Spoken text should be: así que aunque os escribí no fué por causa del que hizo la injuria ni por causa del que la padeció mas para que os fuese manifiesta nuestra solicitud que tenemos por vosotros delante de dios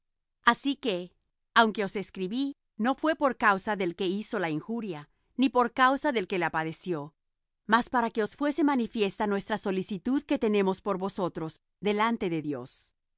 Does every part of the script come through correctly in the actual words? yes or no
yes